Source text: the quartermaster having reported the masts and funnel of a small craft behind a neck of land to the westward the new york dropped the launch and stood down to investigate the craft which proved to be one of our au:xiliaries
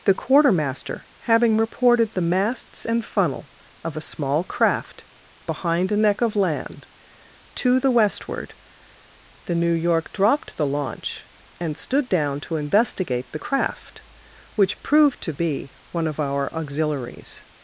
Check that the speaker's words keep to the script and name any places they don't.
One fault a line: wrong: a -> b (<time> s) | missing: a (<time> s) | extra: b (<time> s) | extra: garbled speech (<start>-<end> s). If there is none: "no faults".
no faults